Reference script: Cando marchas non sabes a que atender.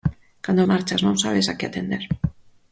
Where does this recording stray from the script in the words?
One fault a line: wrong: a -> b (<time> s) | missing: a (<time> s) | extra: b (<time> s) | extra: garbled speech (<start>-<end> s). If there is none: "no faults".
no faults